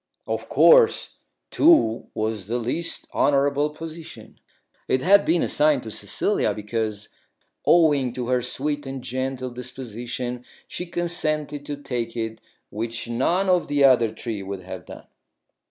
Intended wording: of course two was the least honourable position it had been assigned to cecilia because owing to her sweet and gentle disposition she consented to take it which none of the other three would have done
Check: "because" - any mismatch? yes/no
no